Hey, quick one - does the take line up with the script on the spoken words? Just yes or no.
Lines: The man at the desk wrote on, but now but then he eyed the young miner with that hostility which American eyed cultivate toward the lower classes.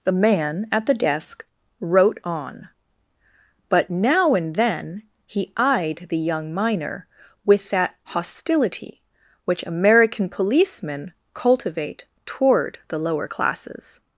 no